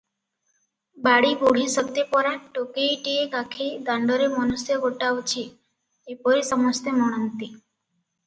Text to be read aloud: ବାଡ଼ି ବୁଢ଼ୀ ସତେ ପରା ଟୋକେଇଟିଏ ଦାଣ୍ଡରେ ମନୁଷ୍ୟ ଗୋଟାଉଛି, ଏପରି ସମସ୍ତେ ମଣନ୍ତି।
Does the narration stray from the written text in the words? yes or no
yes